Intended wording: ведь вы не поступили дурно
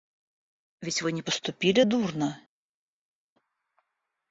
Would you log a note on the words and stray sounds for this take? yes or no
no